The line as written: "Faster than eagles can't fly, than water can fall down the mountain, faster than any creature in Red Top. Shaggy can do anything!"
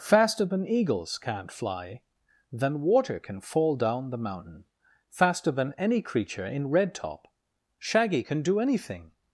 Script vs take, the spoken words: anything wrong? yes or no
no